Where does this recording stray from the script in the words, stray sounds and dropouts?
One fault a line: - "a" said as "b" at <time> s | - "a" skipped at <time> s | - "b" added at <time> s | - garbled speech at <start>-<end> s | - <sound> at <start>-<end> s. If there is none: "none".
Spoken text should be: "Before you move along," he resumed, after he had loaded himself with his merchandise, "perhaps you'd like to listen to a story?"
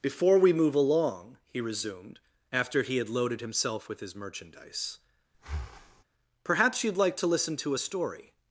- "you" said as "we" at 0.4 s
- breath at 5.3-6.0 s